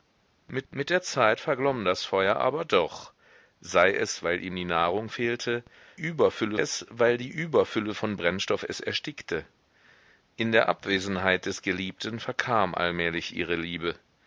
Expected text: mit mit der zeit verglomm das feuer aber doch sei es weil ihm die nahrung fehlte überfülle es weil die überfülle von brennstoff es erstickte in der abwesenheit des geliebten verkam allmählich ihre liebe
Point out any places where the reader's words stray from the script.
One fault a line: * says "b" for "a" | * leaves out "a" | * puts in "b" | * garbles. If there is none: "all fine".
all fine